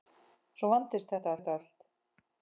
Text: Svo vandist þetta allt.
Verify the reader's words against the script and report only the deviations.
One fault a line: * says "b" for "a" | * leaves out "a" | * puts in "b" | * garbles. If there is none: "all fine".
* puts in "þetta"